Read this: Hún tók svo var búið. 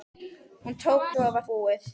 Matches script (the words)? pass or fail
pass